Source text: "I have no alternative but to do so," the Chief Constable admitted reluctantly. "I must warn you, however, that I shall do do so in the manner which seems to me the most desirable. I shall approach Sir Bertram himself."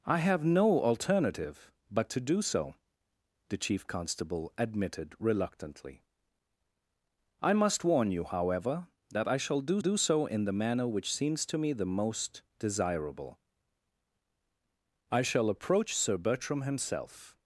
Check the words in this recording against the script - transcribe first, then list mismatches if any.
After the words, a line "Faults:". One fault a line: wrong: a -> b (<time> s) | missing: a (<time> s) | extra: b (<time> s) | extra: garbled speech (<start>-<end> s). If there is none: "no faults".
"I have no alternative but to do so," the Chief Constable admitted reluctantly. "I must warn you, however, that I shall do do so in the manner which seems to me the most desirable. I shall approach Sir Bertram himself."
Faults:
no faults